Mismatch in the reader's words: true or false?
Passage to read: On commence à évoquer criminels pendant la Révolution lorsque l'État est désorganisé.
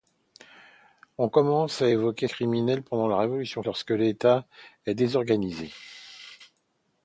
false